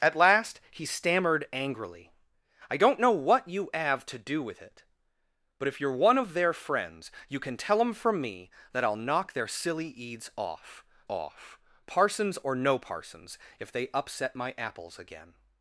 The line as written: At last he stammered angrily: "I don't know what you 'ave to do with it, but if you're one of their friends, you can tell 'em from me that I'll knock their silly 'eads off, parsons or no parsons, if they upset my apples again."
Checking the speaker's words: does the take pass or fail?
fail